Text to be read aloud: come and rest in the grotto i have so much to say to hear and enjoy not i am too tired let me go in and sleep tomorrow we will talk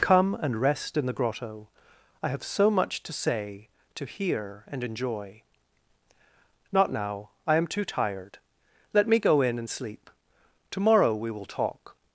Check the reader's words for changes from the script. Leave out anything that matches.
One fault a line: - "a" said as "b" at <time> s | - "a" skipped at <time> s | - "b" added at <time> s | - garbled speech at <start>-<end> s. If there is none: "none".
- "now" added at 6.9 s